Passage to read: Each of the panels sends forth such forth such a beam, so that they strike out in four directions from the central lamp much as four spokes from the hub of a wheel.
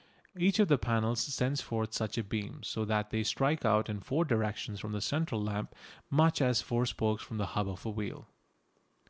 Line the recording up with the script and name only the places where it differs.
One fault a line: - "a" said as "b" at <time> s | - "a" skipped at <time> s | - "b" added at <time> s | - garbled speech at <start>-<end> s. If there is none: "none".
- "forth such" skipped at 2.2 s